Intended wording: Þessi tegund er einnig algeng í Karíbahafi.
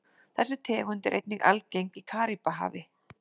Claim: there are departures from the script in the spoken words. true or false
false